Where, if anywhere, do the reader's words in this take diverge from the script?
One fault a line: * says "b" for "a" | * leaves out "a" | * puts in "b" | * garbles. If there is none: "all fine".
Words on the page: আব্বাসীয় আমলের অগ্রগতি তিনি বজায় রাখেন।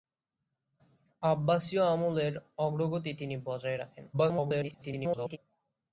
* garbles